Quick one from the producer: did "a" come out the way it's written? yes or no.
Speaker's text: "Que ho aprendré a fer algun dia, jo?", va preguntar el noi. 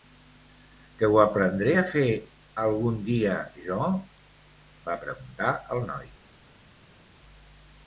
yes